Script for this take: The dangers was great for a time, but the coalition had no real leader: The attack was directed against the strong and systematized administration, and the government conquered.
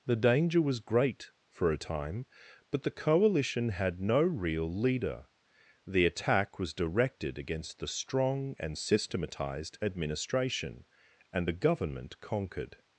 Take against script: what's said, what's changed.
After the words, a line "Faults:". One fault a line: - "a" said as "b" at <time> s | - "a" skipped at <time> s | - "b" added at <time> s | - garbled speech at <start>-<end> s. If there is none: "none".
The danger was great for a time, but the coalition had no real leader: The attack was directed against the strong and systematized administration, and the government conquered.
Faults:
- "dangers" said as "danger" at 0.1 s